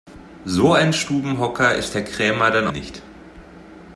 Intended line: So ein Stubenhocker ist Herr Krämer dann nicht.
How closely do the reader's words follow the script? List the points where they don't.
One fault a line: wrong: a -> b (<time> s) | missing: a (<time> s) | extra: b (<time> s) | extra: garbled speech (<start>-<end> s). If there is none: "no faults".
no faults